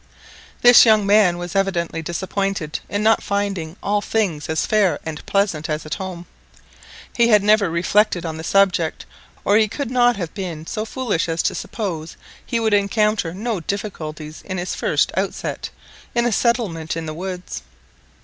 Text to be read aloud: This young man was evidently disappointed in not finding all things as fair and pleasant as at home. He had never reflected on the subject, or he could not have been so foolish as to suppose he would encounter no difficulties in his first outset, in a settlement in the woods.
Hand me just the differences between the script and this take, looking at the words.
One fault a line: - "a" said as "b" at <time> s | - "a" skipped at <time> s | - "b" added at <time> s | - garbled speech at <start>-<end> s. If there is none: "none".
none